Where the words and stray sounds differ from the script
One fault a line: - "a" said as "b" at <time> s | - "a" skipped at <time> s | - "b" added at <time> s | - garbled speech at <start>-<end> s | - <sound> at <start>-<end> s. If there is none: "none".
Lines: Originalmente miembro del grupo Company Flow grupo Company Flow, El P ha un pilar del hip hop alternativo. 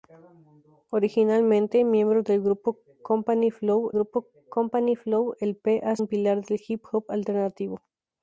none